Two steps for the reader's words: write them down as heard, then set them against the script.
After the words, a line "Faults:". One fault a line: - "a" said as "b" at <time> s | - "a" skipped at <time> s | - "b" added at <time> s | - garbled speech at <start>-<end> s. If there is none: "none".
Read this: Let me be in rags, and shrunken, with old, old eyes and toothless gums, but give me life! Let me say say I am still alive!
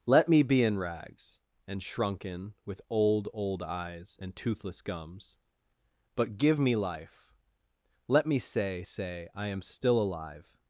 Let me be in rags, and shrunken, with old, old eyes and toothless gums, but give me life! Let me say say I am still alive!
Faults:
none